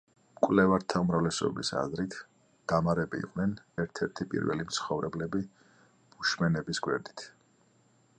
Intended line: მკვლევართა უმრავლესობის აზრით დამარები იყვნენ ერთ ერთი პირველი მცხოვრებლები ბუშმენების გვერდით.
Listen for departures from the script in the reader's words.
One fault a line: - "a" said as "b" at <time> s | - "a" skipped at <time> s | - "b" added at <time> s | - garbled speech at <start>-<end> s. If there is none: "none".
none